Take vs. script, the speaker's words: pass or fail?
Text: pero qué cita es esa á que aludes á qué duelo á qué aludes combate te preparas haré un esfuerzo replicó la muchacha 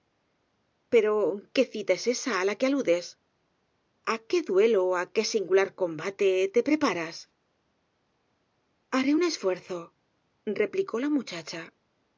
fail